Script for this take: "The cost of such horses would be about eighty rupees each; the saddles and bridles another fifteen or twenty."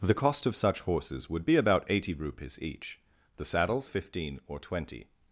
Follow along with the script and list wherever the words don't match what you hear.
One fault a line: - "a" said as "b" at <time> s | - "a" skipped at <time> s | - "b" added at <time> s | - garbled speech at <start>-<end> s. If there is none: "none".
- "and bridles another" skipped at 3.9 s